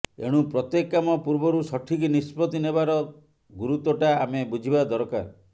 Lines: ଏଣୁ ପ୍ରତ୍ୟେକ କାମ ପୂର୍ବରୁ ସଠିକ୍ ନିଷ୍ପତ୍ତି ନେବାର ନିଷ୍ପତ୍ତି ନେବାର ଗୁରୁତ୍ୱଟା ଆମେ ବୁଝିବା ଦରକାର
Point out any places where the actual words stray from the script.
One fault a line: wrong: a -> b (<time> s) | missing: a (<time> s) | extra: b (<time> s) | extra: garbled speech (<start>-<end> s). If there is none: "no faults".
missing: ନିଷ୍ପତ୍ତି ନେବାର (3.0 s)